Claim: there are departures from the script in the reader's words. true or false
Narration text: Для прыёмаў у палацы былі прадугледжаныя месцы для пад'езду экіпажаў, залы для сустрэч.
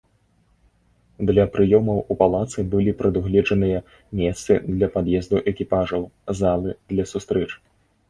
false